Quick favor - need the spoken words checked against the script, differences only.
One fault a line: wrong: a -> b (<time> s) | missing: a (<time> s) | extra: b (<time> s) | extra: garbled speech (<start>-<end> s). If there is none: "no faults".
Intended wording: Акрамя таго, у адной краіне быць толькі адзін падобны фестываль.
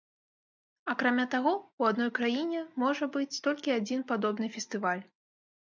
extra: можа (2.9 s)